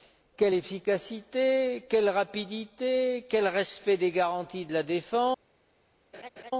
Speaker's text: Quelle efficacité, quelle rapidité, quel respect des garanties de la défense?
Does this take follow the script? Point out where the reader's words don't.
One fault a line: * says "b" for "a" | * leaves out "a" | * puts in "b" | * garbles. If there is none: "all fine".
all fine